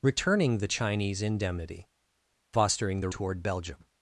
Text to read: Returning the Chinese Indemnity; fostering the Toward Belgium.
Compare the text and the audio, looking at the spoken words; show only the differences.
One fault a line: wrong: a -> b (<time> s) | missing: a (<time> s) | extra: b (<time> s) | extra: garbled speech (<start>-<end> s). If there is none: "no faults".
no faults